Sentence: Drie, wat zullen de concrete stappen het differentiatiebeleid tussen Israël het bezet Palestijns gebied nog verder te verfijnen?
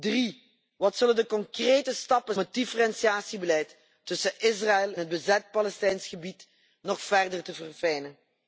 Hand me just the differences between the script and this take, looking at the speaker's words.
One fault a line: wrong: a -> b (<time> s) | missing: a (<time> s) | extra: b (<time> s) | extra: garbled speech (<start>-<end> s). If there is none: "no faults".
no faults